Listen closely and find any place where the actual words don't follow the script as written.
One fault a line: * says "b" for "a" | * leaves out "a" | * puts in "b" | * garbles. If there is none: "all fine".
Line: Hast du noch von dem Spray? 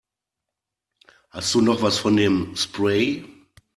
* puts in "was"